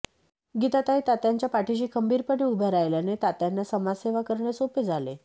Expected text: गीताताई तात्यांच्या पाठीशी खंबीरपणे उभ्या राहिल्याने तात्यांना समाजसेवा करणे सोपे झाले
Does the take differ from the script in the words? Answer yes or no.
no